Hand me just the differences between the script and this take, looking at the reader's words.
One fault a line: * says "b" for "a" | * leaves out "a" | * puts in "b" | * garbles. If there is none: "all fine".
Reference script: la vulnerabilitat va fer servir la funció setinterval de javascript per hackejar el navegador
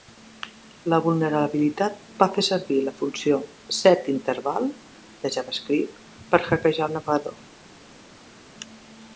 all fine